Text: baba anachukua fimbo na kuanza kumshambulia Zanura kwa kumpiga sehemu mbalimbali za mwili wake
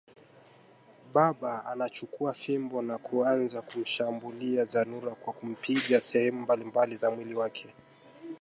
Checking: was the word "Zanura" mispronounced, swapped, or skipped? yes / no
no